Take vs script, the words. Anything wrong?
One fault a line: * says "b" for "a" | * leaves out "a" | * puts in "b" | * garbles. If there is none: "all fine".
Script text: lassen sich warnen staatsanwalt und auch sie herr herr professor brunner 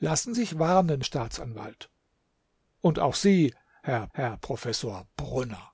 all fine